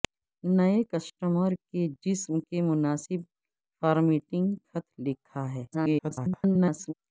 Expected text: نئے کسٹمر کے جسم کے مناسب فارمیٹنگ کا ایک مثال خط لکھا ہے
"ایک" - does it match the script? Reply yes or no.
no